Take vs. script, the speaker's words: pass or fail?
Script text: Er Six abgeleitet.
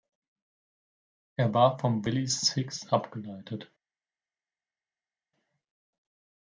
fail